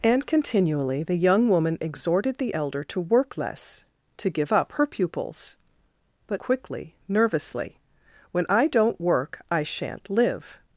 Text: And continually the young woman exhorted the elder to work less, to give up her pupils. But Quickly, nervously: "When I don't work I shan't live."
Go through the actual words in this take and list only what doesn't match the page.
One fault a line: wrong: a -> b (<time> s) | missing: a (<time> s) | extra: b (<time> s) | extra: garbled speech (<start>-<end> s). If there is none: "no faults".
no faults